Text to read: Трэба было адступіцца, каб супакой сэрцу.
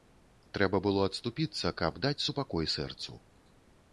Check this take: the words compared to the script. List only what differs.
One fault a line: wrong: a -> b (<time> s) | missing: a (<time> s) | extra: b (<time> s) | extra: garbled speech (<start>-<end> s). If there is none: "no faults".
extra: даць (2.0 s)